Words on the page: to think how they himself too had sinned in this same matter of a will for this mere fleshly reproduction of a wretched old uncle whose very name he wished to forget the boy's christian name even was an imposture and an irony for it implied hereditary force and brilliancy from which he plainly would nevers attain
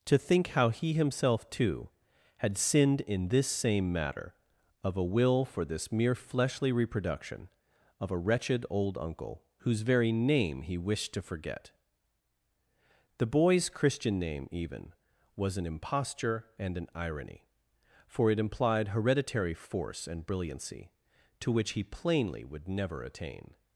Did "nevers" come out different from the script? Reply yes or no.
yes